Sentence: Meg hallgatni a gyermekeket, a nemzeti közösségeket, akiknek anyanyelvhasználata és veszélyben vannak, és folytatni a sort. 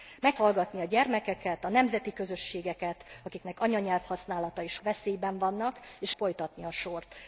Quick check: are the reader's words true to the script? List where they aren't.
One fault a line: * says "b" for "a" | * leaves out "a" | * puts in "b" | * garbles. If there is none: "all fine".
all fine